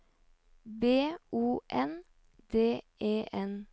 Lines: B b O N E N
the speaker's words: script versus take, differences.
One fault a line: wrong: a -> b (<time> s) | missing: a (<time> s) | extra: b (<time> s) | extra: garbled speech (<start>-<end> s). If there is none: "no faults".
missing: b (1.1 s)
extra: D (2.5 s)